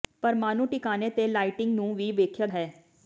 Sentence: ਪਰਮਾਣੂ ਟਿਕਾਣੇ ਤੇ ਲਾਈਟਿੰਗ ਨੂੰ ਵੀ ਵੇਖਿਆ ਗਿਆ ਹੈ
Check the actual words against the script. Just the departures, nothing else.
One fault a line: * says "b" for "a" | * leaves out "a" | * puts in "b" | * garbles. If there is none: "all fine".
* leaves out "ਗਿਆ"